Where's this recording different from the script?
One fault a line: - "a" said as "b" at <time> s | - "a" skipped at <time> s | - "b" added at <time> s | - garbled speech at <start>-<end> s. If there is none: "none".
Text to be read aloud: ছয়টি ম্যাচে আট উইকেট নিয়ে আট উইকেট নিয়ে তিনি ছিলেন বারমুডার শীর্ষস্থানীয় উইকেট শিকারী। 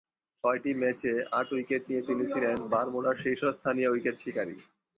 - "আট উইকেট নিয়ে" skipped at 2.0 s